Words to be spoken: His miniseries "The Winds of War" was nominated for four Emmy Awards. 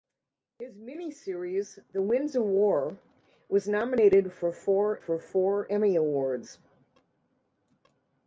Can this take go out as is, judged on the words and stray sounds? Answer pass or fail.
fail